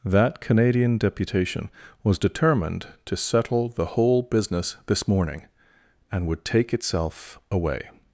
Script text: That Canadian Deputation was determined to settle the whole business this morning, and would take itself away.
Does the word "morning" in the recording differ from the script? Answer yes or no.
no